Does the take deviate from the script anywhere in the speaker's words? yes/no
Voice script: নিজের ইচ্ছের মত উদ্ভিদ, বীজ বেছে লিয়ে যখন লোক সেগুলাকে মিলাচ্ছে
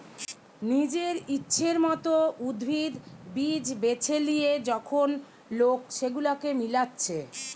no